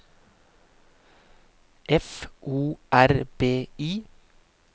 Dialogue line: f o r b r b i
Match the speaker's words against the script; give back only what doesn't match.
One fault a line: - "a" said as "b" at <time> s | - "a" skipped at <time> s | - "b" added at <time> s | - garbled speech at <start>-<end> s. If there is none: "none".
- "r b" skipped at 3.7 s